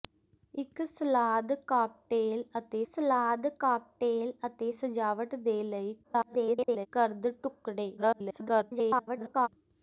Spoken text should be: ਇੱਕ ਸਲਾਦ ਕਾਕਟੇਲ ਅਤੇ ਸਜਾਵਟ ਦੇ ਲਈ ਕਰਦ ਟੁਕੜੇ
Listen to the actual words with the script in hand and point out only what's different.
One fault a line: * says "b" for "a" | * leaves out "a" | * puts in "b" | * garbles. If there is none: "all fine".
* puts in "ਸਲਾਦ ਕਾਕਟੇਲ ਅਤੇ"
* garbles
* garbles